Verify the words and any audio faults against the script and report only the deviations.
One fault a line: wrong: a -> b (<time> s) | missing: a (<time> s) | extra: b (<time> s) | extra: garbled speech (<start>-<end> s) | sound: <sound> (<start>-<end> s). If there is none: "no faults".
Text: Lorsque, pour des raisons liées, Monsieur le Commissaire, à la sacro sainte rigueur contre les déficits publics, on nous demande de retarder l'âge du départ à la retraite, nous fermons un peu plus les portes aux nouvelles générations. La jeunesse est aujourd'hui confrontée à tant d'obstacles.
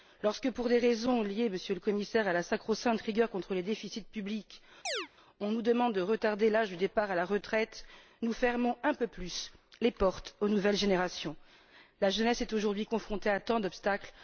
sound: chirp (4.9-5.1 s)